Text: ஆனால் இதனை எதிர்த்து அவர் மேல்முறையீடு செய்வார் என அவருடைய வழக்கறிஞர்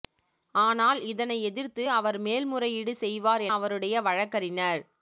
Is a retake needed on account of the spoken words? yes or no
yes